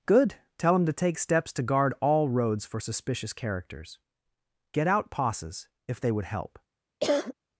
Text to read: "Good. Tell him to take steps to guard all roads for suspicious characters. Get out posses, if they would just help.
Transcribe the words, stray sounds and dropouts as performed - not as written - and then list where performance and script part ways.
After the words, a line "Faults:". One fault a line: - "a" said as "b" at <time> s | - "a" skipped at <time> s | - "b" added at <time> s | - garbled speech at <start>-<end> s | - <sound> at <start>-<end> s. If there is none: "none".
"Good. Tell him to take steps to guard all roads for suspicious characters. Get out posses, if they would help.
Faults:
- "just" skipped at 6.3 s
- cough at 7.0-7.3 s